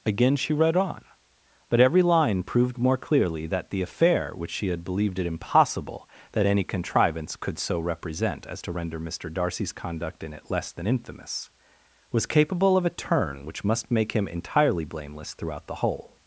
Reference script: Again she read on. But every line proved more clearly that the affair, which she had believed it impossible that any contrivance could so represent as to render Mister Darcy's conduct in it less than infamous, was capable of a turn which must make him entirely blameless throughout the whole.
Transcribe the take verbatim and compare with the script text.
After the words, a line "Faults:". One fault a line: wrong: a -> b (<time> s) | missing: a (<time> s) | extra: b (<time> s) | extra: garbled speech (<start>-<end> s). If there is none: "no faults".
Again she read on. But every line proved more clearly that the affair, which she had believed it impossible that any contrivance could so represent as to render Mister Darcy's conduct in it less than infamous, was capable of a turn which must make him entirely blameless throughout the whole.
Faults:
no faults